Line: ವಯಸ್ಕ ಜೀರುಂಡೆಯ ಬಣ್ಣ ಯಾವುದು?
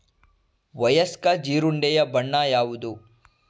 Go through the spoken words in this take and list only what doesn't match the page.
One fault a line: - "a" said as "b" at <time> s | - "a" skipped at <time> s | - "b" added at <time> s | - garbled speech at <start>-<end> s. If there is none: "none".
none